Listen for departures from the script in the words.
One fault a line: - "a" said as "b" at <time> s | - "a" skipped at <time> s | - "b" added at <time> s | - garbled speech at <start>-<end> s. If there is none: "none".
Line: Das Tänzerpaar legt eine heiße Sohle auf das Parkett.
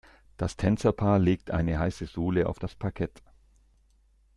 none